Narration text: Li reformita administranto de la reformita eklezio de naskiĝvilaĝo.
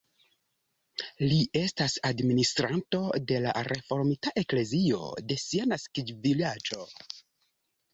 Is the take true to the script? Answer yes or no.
no